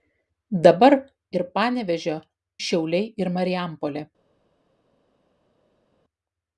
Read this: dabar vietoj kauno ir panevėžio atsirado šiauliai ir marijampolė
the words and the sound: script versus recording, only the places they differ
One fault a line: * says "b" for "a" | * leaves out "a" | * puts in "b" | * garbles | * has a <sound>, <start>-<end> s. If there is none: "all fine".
* leaves out "vietoj kauno"
* leaves out "atsirado"